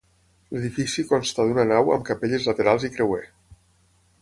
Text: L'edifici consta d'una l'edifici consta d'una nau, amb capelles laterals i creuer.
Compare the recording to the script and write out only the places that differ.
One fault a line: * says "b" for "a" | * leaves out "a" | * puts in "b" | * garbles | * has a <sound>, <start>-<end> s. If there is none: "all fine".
* leaves out "l'edifici consta d'una"